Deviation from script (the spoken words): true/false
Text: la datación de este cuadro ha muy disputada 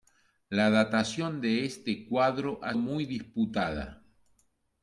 false